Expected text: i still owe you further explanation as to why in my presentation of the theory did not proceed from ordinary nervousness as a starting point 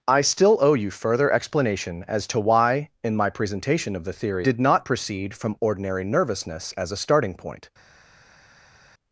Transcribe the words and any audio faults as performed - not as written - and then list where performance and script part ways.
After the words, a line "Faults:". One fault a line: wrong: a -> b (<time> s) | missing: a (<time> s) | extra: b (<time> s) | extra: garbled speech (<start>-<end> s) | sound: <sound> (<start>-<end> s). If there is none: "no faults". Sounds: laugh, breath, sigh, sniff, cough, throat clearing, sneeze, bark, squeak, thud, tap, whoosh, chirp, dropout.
i still owe you further explanation as to why in my presentation of the theory did not proceed from ordinary nervousness as a starting point
Faults:
no faults